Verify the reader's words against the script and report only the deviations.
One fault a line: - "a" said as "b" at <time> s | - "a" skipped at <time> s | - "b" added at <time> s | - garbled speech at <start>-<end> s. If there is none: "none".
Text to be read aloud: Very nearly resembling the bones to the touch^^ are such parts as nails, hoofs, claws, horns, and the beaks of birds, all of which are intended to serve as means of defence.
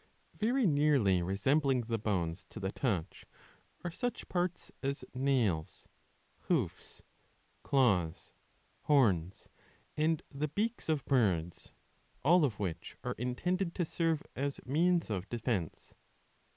none